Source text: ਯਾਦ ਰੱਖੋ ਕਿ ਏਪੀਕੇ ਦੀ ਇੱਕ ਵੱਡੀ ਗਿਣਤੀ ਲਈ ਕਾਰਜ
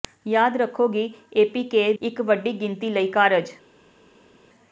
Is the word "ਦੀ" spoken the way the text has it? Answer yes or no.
no